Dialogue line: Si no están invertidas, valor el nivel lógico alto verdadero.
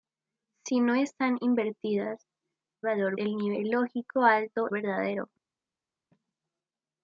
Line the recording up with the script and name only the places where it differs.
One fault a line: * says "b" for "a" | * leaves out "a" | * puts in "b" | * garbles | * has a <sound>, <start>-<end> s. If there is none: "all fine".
all fine